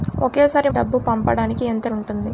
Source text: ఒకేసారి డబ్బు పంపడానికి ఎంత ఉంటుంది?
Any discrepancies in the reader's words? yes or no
no